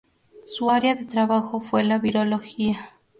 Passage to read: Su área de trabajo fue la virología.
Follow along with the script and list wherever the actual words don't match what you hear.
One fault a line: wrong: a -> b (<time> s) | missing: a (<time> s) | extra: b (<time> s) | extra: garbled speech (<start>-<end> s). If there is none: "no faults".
no faults